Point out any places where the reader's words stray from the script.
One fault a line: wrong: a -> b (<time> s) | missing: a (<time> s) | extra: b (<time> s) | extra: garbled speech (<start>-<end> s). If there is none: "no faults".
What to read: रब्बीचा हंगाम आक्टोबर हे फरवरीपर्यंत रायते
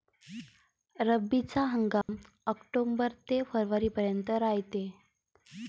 wrong: हे -> ते (3.3 s)